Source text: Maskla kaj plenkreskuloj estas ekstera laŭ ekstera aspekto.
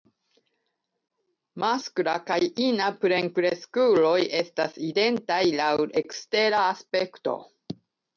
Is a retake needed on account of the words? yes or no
yes